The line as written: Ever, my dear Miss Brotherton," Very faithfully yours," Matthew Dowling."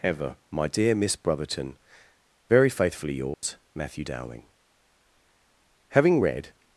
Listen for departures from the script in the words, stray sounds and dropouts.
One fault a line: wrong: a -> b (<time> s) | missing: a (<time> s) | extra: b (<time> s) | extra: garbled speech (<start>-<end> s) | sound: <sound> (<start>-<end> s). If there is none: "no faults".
sound: dropout (3.3-3.4 s)
extra: Having read (5.9 s)